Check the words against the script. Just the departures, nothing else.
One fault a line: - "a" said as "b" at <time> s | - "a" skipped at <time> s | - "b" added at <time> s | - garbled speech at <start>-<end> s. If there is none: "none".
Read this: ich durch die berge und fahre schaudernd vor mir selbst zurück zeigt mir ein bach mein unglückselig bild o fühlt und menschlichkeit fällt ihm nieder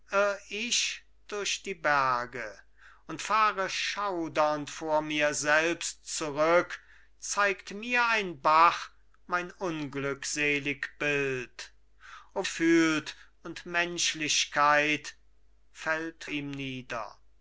none